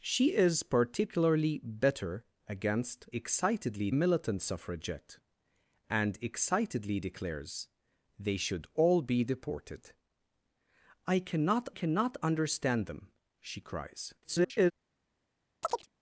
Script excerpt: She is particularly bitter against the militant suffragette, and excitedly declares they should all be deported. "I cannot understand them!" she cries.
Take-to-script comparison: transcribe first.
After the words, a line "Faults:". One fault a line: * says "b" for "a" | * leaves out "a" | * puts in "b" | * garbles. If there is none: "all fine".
She is particularly bitter against excitedly militant suffragette, and excitedly declares they should all be deported. "I cannot cannot understand them!" she cries. [garbled]
Faults:
* says "excitedly" for "the"
* puts in "cannot"
* garbles